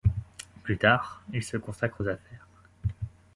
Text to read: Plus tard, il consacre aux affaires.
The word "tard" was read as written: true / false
true